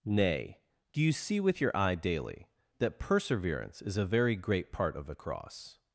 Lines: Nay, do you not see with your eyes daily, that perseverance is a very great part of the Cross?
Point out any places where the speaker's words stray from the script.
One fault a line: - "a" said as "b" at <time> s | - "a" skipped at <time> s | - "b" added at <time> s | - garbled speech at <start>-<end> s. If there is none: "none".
- "not" skipped at 1.1 s
- "eyes" said as "eye" at 1.8 s